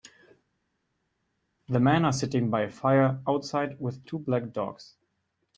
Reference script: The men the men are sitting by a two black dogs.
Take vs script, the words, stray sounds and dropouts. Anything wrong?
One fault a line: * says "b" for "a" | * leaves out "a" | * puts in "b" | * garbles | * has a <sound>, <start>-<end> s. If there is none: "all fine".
* leaves out "the men"
* puts in "fire outside with"